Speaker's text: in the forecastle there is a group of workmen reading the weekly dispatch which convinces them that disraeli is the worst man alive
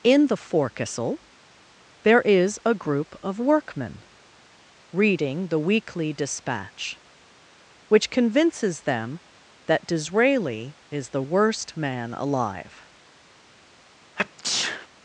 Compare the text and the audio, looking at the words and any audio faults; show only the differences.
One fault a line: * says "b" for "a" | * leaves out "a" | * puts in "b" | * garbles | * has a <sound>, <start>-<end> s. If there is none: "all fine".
* has a sneeze, 14.2-14.9 s